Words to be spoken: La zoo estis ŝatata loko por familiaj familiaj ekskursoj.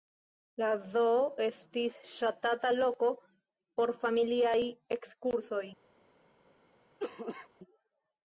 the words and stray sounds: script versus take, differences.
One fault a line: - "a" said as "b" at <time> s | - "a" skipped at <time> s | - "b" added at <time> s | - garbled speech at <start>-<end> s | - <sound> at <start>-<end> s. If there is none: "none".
- "familiaj" skipped at 4.6 s
- cough at 7.0-7.5 s